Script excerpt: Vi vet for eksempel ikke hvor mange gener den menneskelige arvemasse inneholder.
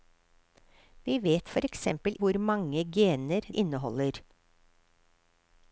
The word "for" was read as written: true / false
true